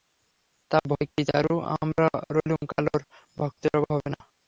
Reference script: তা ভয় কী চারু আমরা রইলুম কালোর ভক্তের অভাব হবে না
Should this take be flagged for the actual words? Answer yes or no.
no